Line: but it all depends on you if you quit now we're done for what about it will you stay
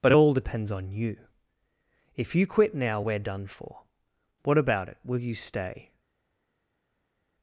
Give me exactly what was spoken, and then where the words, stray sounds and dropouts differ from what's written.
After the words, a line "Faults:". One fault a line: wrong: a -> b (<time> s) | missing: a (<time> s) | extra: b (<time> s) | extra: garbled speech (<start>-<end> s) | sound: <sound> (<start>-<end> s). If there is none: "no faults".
but it all depends on you if you quit now we're done for what about it will you stay
Faults:
no faults